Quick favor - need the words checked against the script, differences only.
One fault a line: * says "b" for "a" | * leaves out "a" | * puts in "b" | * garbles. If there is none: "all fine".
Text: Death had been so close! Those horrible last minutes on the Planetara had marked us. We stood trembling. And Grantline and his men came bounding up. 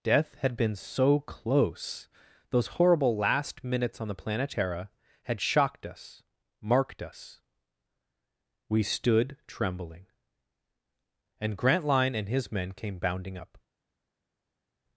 * puts in "shocked us"